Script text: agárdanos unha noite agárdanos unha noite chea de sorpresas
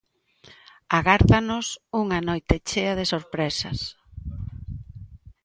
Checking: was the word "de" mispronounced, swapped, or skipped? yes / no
no